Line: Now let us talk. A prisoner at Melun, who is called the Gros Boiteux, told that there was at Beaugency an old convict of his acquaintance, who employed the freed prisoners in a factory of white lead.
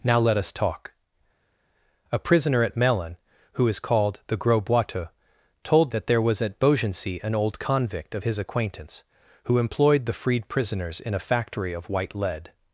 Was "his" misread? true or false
false